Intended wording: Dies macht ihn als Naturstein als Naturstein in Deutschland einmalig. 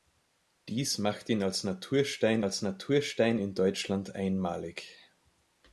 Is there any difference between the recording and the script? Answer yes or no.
no